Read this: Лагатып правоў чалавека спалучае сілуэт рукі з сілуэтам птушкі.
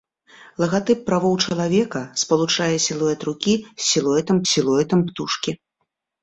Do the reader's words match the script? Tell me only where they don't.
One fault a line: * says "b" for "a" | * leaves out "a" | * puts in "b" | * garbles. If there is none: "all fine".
* puts in "сілуэтам"